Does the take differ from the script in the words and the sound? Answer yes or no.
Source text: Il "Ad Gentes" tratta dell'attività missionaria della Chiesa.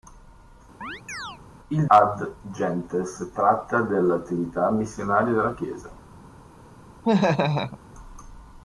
yes